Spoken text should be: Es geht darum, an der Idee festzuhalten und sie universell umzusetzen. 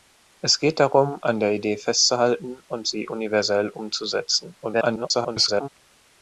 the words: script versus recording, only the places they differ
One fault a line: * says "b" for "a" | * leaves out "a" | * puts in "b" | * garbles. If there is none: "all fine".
* garbles